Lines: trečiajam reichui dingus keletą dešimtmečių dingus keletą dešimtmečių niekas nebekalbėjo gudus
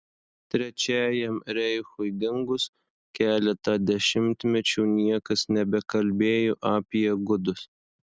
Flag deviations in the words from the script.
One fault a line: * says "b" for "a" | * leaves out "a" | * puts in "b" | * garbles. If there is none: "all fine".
* leaves out "dingus keletą dešimtmečių"
* puts in "apie"